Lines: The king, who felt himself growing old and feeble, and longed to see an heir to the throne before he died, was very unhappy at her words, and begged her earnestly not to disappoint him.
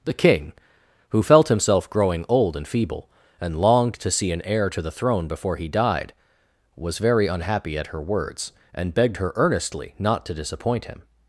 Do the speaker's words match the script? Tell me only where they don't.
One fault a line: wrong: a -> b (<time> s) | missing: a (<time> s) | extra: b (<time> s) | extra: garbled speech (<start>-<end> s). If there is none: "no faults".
no faults